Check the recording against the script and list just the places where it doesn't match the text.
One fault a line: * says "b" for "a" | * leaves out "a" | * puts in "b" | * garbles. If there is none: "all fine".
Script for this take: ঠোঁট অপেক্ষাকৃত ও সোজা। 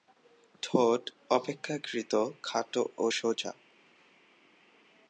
* puts in "খাটো"